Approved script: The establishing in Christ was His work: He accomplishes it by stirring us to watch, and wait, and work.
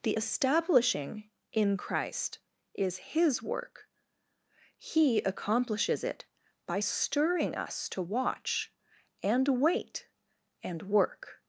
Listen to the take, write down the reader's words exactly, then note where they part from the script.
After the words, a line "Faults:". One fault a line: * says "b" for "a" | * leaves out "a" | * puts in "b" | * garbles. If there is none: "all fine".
The establishing in Christ is His work: He accomplishes it by stirring us to watch, and wait, and work.
Faults:
* says "is" for "was"